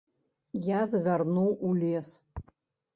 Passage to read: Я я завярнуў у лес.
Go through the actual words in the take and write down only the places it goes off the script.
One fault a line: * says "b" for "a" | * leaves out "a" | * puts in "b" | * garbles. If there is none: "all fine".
* leaves out "я"